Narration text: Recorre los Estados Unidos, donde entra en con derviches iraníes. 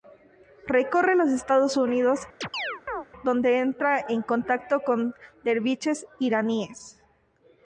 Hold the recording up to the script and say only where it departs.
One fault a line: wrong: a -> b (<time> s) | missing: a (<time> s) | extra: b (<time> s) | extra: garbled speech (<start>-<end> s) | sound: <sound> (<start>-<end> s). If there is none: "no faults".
sound: chirp (2.4-3.1 s)
extra: contacto (4.2 s)